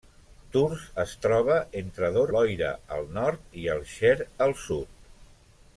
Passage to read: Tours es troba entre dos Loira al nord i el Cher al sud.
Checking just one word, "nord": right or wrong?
right